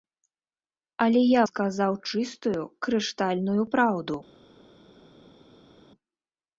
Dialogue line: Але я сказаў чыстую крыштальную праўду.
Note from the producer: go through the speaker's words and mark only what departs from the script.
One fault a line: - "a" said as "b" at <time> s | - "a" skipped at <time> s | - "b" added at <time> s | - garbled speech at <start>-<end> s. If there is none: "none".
none